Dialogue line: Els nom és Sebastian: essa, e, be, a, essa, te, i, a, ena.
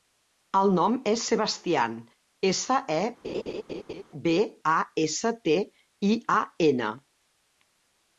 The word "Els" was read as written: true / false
false